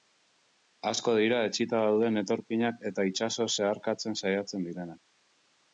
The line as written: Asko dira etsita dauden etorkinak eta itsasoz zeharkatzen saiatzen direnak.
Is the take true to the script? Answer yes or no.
yes